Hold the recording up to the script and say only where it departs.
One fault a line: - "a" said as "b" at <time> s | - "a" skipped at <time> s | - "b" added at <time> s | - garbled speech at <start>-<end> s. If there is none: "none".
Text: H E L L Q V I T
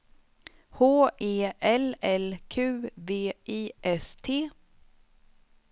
- "S" added at 3.8 s